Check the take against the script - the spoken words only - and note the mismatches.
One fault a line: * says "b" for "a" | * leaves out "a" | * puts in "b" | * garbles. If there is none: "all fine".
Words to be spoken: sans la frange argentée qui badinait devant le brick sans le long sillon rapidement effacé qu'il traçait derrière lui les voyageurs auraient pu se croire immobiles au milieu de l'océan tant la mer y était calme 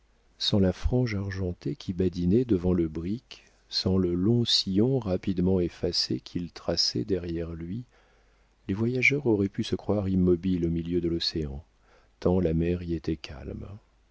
all fine